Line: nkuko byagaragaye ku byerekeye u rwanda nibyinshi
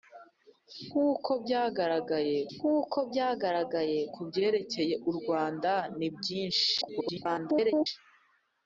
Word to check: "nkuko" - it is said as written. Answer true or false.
true